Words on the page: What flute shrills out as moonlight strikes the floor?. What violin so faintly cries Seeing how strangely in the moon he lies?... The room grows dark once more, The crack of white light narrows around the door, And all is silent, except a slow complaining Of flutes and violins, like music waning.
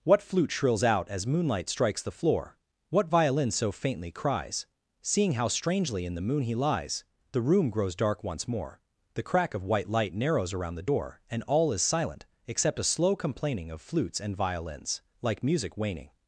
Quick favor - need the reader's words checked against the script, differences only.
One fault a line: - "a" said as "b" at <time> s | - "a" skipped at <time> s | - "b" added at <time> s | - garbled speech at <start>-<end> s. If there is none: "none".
none